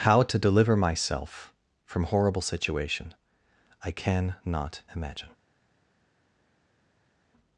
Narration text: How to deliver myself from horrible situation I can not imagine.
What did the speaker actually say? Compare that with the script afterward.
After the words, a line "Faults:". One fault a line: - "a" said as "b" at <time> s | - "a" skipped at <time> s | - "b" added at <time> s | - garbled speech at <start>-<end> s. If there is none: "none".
How to deliver myself from horrible situation I can not imagine.
Faults:
none